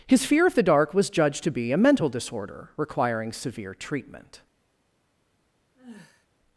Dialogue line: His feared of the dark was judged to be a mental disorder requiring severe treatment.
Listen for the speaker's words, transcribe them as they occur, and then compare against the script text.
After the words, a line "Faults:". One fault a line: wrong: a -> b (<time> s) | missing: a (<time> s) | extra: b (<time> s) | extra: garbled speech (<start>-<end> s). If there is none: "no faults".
His fear of the dark was judged to be a mental disorder requiring severe treatment.
Faults:
wrong: feared -> fear (0.2 s)